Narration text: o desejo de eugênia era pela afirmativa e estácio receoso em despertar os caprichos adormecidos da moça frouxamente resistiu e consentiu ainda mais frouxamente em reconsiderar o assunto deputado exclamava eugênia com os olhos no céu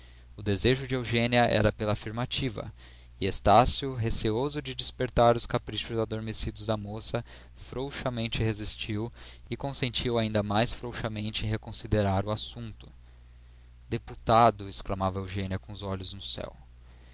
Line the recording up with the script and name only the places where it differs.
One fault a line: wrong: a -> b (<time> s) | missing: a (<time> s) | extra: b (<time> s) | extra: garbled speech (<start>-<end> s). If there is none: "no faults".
wrong: em -> de (4.6 s)